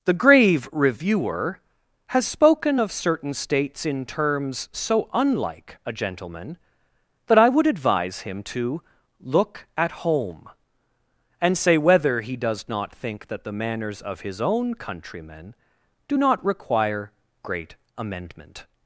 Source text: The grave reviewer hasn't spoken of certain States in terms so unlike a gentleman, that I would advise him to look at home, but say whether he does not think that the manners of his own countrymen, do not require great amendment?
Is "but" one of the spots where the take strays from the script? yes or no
yes